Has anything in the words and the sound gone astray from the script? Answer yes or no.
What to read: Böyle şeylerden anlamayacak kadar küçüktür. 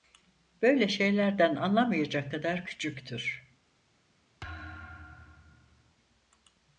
yes